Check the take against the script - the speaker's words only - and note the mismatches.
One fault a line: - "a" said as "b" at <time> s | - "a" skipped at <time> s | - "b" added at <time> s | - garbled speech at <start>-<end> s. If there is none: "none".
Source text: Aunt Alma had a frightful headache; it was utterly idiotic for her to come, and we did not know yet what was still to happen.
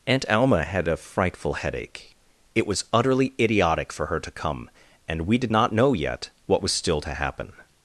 none